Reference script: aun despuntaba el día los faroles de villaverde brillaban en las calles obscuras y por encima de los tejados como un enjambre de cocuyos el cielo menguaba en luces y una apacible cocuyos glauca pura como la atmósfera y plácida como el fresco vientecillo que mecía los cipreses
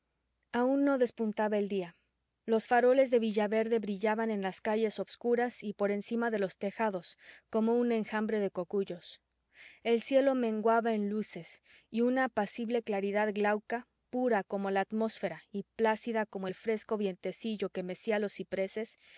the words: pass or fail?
fail